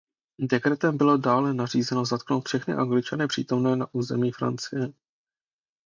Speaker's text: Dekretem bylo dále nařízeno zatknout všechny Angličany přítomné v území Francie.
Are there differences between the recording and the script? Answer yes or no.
yes